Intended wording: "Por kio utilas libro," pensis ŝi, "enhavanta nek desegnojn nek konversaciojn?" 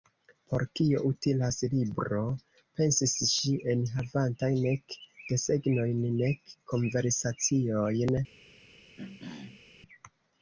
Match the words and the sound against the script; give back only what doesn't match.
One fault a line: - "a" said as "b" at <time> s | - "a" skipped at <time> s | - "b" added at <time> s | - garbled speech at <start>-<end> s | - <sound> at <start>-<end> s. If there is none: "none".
- throat clearing at 9.0-9.6 s